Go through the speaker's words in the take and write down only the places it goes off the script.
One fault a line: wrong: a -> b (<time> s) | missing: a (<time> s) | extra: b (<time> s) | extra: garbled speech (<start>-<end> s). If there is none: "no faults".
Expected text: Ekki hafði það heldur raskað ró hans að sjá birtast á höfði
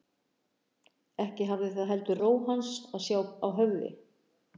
missing: raskað (2.2 s)
missing: birtast (3.2 s)